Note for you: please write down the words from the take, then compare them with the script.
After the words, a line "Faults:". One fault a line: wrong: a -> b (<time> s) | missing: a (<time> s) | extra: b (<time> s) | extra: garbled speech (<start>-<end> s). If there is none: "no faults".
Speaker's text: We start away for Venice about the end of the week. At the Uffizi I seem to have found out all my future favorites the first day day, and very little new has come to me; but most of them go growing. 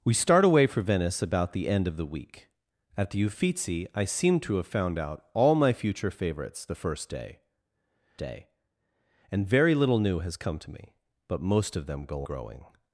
We start away for Venice about the end of the week. At the Uffizi I seem to have found out all my future favorites the first day day, and very little new has come to me; but most of them go growing.
Faults:
no faults